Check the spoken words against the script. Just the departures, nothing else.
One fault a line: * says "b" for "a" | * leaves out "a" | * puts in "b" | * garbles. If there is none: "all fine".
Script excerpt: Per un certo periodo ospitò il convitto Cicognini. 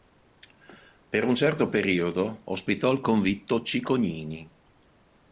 all fine